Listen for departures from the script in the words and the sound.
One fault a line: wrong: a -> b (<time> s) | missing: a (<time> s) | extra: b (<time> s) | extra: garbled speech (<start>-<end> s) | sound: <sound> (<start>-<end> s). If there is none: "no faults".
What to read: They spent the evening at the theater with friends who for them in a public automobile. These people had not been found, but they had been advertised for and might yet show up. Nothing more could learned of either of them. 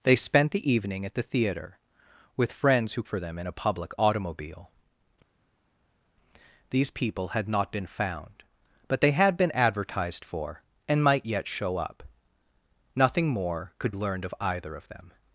no faults